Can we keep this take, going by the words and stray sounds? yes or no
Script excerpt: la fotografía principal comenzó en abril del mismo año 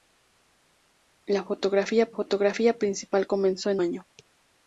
no